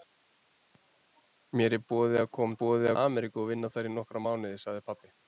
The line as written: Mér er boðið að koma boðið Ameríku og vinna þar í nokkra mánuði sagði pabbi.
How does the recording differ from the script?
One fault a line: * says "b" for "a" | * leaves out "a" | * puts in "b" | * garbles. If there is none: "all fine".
all fine